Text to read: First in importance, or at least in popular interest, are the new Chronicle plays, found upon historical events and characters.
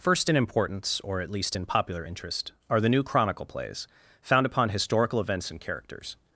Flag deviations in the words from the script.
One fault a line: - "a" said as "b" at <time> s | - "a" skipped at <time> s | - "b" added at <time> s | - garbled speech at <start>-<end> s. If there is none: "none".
none